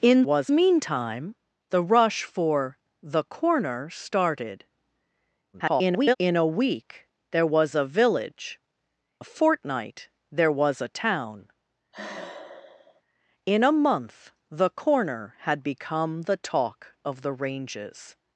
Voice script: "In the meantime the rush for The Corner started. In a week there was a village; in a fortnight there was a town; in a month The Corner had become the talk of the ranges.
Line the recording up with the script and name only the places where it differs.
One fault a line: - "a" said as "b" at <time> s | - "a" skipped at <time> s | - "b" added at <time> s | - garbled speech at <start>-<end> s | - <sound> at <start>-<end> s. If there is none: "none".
- "the" said as "was" at 0.2 s
- garbled speech at 5.5-6.2 s
- "in" skipped at 8.6 s
- sigh at 11.9-13.0 s